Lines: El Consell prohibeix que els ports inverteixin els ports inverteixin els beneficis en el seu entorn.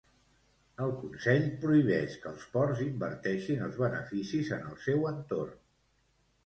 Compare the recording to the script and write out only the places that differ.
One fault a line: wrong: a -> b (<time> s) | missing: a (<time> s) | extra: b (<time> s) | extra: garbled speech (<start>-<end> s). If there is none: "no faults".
missing: ports inverteixin els (3.8 s)